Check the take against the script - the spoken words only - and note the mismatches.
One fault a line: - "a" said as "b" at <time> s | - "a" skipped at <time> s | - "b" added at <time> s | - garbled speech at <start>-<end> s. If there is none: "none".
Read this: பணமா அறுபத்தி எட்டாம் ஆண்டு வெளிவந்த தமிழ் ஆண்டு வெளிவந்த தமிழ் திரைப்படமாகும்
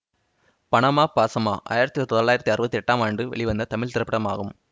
- "அறுபத்தி எட்டாம் ஆண்டு வெளிவந்த தமிழ்" said as "பாசமா ஆயிரத்தி தொள்ளாயிரத்தி அறுபத்தி எட்டாம்" at 1.1 s